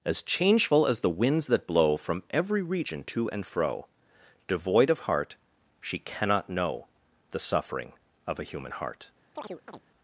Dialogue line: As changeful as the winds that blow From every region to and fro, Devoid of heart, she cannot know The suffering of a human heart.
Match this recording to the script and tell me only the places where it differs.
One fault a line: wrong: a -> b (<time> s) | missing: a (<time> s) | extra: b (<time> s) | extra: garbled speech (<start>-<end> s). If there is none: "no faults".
no faults